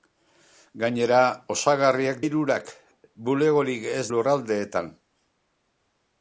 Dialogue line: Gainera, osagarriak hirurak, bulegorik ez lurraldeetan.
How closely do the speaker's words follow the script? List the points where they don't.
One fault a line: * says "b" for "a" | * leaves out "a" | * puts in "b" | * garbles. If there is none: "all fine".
all fine